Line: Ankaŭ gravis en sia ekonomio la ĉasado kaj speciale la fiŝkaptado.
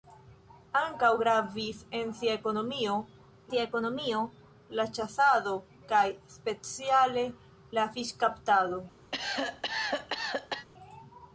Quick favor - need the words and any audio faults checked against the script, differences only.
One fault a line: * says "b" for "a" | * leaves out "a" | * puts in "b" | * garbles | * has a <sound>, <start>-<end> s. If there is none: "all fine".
* puts in "sia ekonomio"
* has a cough, 9.1-10.7 s